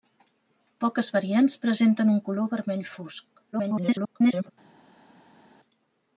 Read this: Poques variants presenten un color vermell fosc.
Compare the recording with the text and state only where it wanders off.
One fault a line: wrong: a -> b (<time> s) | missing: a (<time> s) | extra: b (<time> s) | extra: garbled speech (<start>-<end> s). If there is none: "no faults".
extra: garbled speech (3.5-4.5 s)